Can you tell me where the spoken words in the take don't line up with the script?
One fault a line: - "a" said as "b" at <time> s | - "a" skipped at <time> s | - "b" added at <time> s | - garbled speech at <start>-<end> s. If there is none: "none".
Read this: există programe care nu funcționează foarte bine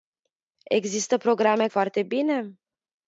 - "care nu funcționează" skipped at 1.7 s